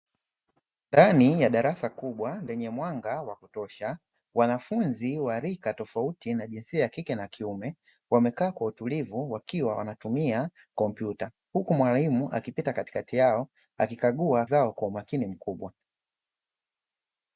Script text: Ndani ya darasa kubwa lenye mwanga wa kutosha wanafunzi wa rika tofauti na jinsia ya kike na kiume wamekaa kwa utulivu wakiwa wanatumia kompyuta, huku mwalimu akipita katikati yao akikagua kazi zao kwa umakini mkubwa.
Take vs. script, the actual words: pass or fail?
fail